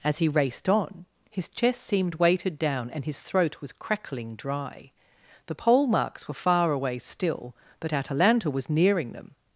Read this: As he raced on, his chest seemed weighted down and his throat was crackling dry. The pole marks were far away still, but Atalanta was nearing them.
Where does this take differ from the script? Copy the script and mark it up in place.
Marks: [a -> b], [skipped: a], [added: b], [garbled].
As he raced on, his chest seemed weighted down and his throat was crackling dry. The pole marks were far away still, but Atalanta was nearing them.